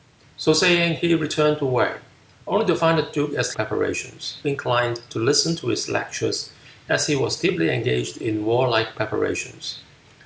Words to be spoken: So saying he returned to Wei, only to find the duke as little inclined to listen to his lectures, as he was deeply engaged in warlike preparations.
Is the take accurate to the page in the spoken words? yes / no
no